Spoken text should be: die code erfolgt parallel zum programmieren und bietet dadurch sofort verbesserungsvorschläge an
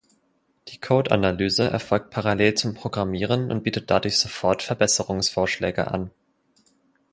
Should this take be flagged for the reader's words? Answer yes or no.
yes